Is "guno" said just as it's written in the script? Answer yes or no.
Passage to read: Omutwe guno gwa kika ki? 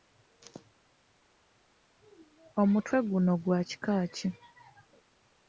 yes